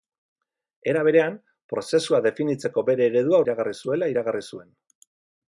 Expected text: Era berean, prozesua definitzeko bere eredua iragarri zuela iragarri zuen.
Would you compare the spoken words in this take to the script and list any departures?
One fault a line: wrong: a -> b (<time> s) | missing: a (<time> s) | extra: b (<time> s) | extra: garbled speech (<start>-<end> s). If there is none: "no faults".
no faults